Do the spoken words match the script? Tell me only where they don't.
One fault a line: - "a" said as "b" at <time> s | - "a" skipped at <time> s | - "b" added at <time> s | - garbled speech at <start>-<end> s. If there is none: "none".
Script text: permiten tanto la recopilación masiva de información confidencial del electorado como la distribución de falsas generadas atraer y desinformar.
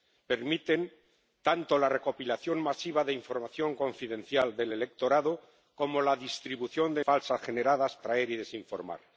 none